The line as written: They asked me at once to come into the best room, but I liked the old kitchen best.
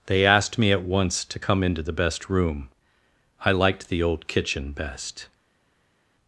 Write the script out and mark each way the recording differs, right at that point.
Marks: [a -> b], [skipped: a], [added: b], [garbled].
They asked me at once to come into the best room, [skipped: but] I liked the old kitchen best.